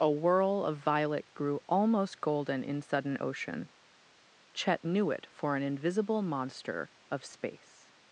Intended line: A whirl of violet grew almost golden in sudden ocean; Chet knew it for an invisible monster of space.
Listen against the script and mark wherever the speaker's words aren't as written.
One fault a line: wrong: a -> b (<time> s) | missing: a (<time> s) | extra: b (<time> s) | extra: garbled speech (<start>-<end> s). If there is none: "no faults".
no faults